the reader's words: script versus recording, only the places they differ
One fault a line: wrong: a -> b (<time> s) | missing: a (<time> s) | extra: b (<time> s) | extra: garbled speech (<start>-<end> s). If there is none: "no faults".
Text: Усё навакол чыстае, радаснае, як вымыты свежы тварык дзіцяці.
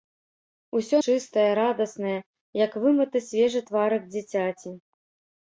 missing: навакол (1.0 s)